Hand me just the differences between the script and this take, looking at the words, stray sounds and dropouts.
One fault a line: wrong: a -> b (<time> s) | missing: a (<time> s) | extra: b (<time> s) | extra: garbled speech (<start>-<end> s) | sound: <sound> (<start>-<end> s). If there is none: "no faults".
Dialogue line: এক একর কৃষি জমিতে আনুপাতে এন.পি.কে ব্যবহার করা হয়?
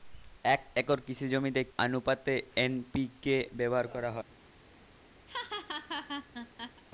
sound: laugh (5.3-6.8 s)